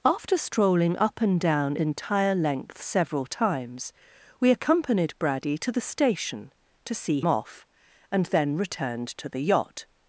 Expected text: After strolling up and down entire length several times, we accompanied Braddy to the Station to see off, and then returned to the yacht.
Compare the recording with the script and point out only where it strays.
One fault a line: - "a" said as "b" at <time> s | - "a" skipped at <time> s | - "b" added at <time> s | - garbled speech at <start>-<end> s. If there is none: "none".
none